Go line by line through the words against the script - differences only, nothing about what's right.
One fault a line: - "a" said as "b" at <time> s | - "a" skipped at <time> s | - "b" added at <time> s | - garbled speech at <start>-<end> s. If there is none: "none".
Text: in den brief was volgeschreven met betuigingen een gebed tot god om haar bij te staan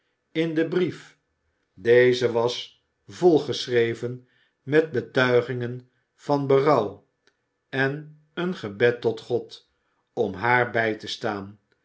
- "deze" added at 1.7 s
- "van berouw en" added at 6.2 s